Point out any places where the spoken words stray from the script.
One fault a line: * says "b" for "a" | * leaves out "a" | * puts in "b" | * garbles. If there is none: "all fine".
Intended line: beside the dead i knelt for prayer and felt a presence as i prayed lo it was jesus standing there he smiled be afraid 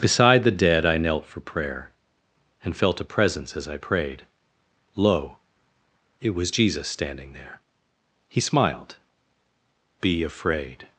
all fine